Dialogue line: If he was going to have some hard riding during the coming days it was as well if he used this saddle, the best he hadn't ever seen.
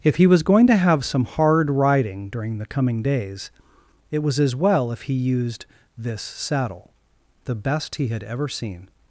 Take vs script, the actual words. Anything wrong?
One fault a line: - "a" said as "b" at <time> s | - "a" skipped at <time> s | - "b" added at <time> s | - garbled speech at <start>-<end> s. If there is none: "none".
- "hadn't" said as "had" at 8.1 s